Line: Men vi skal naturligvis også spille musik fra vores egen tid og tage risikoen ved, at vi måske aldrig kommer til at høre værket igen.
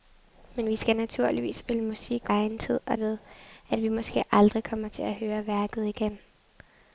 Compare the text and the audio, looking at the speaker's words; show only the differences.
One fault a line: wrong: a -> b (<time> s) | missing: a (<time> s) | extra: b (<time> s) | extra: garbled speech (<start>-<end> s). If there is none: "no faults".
missing: også (1.6 s)
missing: fra vores (2.3 s)
missing: tage risikoen (3.0 s)